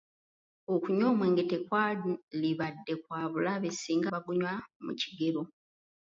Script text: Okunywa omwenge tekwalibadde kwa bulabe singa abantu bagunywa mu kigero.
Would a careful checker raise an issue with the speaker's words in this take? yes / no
yes